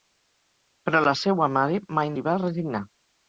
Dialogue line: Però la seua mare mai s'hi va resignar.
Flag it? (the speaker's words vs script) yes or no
no